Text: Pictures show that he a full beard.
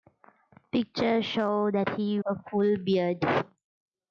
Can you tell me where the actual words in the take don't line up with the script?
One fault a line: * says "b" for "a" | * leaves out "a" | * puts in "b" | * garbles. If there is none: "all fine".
all fine